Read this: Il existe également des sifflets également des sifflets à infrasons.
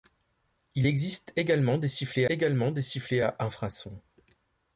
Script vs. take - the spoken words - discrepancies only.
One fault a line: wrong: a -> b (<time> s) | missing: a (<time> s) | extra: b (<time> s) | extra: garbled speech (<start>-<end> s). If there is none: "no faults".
no faults